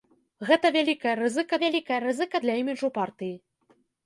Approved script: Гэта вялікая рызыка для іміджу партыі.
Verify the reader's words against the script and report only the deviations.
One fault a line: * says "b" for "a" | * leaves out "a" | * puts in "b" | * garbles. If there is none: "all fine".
* puts in "вялікая рызыка"